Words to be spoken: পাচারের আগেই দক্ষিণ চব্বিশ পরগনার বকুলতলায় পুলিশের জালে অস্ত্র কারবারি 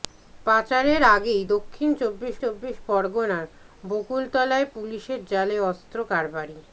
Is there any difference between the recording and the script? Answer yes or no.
yes